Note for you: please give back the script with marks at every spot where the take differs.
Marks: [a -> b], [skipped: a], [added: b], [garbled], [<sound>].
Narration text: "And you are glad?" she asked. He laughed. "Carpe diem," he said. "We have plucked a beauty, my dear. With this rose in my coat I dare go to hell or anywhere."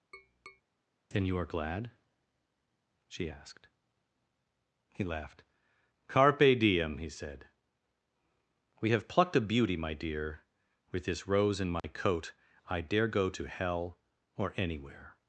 [tap] ["And -> Then] you are glad?" she asked. He laughed. "Carpe diem," he said. "We have plucked a beauty, my dear. With this rose in my [dropout] coat I dare go to hell or anywhere."